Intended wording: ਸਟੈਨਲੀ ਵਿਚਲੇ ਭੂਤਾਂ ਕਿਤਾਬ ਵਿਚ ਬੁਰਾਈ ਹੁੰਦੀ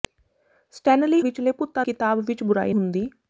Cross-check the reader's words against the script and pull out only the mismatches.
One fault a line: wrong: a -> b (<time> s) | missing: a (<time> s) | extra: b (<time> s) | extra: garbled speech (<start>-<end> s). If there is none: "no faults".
no faults